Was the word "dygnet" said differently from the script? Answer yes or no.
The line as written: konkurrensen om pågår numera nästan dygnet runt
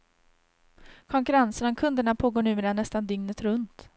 no